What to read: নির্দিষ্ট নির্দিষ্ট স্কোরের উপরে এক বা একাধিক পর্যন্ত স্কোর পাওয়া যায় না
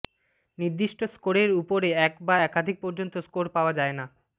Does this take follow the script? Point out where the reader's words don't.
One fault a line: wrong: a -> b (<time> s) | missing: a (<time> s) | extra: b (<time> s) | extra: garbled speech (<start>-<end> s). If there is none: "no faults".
missing: নির্দিষ্ট (1.0 s)